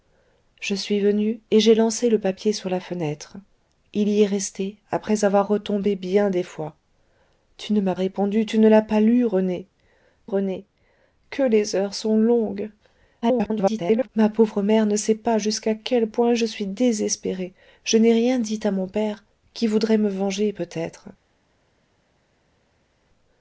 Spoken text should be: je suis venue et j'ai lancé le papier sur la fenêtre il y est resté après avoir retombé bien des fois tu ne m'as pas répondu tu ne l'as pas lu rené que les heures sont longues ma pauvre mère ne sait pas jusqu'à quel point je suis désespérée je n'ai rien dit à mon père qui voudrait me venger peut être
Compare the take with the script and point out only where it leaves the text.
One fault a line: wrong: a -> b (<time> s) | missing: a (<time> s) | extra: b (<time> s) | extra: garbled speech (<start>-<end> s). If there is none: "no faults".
missing: pas (7.9 s)
extra: rené (10.3 s)
extra: garbled speech (13.2-14.1 s)